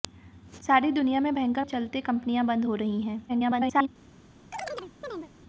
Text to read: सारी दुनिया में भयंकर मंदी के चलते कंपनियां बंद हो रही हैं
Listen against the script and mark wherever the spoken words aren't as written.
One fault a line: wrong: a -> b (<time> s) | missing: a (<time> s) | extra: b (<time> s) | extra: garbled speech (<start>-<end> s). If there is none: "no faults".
missing: मंदी के (1.6 s)
extra: garbled speech (3.3-3.9 s)